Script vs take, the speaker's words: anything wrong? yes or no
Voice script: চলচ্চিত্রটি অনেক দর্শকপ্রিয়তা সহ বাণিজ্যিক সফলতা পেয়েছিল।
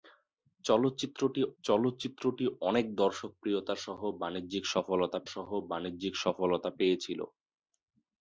yes